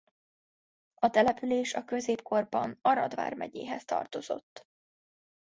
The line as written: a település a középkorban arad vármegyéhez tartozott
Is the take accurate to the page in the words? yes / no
yes